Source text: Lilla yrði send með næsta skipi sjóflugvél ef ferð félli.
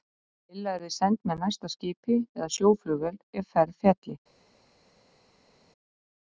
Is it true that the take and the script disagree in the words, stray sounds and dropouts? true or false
true